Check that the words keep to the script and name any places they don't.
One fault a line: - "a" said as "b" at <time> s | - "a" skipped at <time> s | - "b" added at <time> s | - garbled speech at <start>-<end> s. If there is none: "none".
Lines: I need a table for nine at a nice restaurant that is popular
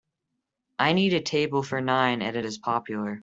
- "nice restaurant that" skipped at 2.4 s